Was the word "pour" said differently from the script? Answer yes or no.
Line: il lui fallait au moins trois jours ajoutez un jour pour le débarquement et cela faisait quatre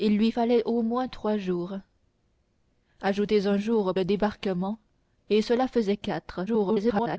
yes